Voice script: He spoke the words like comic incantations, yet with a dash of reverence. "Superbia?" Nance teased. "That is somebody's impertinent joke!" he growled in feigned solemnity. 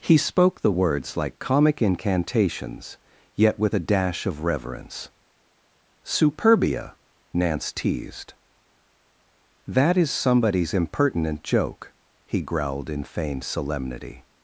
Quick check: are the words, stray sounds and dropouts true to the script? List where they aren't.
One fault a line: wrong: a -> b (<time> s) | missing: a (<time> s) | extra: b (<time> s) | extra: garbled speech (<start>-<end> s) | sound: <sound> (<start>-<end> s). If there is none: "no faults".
no faults